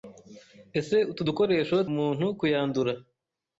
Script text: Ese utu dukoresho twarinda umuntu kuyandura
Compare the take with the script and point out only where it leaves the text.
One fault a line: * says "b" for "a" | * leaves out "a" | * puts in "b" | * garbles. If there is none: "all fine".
* leaves out "twarinda"